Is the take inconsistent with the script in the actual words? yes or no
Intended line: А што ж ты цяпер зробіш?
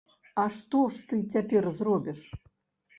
no